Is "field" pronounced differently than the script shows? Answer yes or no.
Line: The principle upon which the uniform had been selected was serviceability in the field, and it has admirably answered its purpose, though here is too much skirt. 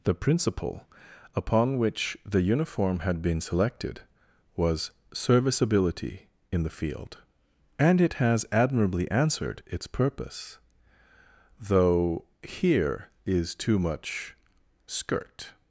no